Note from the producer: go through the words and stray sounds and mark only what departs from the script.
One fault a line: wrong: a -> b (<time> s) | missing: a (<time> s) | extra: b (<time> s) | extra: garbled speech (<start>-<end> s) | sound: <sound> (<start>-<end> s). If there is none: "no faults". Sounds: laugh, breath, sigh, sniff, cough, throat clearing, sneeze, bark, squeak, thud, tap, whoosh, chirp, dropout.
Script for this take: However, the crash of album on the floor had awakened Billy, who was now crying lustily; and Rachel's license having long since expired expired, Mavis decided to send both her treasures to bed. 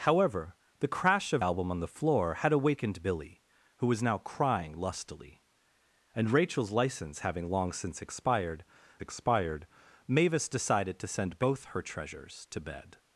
no faults